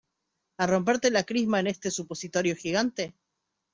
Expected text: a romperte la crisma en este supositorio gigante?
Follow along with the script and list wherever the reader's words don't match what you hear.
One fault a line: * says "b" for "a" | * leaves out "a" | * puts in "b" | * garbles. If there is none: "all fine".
all fine